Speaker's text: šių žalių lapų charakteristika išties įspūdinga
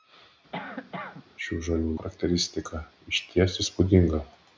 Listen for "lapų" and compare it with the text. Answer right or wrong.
wrong